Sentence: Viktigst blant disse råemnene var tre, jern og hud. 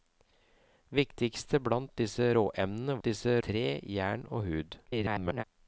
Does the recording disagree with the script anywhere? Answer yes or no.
yes